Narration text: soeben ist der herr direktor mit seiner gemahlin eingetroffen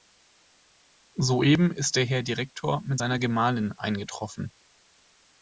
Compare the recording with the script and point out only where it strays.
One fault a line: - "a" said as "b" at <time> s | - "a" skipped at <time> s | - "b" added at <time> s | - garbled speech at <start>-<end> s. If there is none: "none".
none